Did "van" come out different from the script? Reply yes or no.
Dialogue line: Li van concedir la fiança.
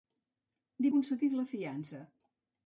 yes